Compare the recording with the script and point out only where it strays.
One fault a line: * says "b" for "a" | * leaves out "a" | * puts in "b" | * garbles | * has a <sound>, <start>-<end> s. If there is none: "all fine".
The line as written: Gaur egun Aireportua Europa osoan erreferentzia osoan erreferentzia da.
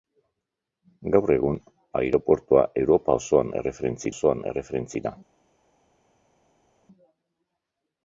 all fine